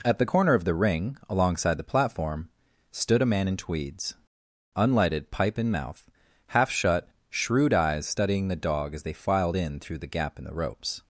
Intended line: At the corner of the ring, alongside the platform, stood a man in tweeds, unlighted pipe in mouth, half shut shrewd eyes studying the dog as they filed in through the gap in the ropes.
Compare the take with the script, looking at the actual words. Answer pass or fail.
pass